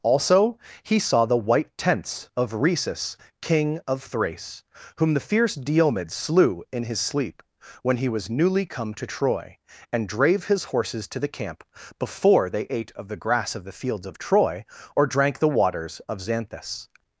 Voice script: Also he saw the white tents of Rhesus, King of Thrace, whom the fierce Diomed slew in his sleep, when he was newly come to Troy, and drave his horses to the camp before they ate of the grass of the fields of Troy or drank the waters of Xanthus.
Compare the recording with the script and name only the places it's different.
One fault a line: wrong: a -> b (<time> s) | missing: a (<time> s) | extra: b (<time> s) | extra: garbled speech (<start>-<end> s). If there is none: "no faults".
no faults